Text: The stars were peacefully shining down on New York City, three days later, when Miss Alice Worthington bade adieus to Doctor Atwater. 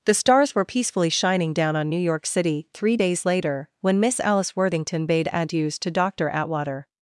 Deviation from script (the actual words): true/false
false